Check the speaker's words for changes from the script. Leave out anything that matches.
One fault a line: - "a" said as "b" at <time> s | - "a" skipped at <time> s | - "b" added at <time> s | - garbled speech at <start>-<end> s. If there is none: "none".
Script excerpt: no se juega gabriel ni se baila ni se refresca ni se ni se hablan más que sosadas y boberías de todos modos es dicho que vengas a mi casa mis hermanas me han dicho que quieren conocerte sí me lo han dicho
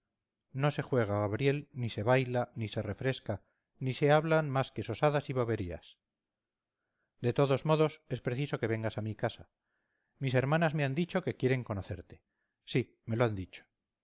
- "ni se" skipped at 4.1 s
- "dicho" said as "preciso" at 8.2 s